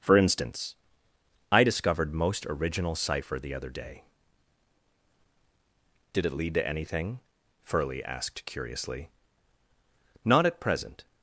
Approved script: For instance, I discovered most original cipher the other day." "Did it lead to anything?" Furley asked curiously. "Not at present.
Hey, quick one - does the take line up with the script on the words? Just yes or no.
yes